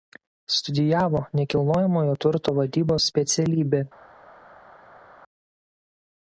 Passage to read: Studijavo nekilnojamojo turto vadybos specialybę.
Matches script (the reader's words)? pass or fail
pass